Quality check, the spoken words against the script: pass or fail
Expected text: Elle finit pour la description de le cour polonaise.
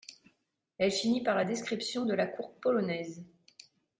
fail